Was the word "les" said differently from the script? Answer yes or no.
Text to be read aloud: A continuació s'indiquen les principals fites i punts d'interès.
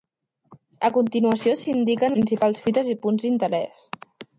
yes